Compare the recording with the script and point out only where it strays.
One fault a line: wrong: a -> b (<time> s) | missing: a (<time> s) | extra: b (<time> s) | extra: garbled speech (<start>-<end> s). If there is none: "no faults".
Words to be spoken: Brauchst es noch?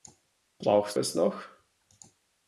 no faults